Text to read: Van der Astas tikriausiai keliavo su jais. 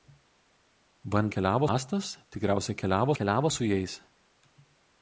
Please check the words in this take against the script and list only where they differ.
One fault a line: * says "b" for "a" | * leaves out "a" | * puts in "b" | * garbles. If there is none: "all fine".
* says "keliavo" for "der"
* puts in "keliavo"